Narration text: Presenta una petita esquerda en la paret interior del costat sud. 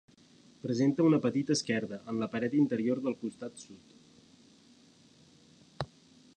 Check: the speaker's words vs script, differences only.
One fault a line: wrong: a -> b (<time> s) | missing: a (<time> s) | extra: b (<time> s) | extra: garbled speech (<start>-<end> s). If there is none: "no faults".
no faults